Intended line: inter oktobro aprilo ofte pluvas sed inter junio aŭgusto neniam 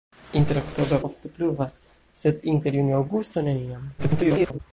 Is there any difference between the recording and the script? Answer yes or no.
yes